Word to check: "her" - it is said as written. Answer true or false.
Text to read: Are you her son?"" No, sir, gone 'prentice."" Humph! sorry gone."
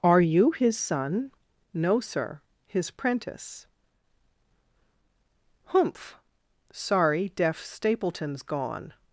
false